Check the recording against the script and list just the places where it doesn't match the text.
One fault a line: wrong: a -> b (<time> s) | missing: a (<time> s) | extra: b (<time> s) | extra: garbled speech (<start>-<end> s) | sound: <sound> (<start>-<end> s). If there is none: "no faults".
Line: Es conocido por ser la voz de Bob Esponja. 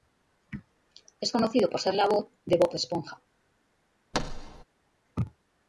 sound: thud (4.1-4.6 s)